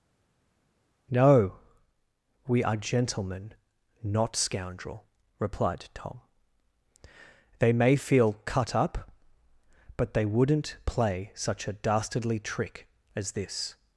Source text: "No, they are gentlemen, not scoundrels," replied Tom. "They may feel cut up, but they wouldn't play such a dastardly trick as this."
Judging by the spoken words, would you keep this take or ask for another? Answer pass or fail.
fail